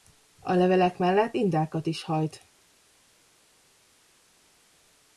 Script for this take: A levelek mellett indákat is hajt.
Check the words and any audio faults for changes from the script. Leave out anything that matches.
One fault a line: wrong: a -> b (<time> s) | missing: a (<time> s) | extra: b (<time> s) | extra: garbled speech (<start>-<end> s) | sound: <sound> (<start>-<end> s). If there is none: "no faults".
no faults